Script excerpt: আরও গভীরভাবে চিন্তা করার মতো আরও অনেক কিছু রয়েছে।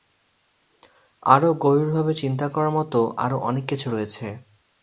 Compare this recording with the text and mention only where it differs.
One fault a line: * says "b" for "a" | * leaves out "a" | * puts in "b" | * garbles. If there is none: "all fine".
all fine